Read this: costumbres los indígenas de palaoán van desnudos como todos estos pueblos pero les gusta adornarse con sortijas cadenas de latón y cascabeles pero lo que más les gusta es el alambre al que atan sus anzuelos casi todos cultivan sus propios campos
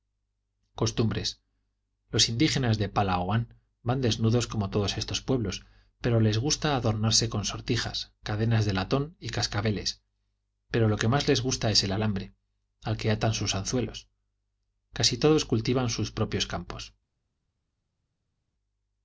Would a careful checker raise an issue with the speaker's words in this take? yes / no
no